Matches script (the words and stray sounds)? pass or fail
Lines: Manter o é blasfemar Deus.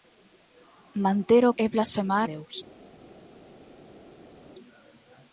pass